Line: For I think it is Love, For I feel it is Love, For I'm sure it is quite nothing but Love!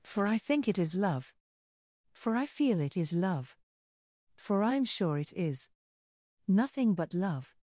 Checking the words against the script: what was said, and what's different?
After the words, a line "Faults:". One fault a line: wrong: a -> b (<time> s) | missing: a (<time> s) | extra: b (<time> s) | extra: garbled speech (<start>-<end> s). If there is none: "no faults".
For I think it is Love, For I feel it is Love, For I'm sure it is nothing but Love!
Faults:
missing: quite (5.7 s)